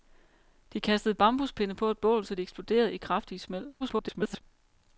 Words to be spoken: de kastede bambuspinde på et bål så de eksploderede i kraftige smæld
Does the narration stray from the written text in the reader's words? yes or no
yes